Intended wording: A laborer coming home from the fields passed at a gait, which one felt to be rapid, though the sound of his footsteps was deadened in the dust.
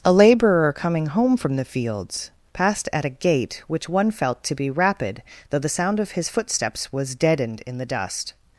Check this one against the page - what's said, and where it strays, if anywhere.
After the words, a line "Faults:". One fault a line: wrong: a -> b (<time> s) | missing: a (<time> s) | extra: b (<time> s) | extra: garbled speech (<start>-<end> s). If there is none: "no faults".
A laborer coming home from the fields passed at a gait, which one felt to be rapid, though the sound of his footsteps was deadened in the dust.
Faults:
no faults